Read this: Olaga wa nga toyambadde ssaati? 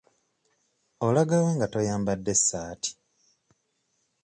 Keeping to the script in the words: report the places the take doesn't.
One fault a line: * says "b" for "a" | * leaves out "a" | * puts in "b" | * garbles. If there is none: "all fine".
all fine